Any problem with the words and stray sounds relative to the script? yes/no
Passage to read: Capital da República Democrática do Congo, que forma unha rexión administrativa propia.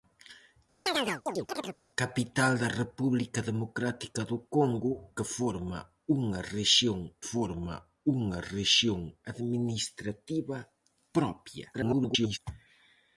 yes